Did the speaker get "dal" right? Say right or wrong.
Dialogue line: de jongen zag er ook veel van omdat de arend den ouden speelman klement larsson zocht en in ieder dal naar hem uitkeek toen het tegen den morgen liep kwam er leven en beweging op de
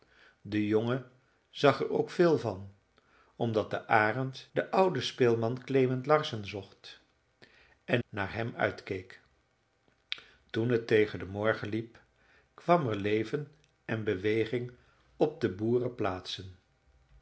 wrong